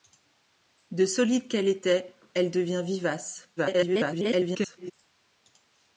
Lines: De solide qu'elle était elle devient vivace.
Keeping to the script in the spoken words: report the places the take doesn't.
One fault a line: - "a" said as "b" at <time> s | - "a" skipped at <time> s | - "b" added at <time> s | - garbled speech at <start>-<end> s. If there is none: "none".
- garbled speech at 3.6-4.9 s